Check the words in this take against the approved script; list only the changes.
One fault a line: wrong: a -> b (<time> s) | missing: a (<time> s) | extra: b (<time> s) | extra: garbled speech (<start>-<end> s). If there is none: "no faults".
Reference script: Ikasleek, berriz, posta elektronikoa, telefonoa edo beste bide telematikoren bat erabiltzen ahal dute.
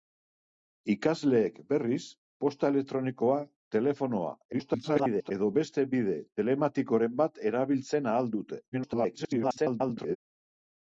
extra: garbled speech (4.5-5.3 s)
extra: garbled speech (8.7-10.2 s)